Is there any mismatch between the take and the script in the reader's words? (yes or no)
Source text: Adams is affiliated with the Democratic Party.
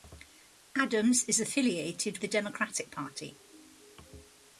yes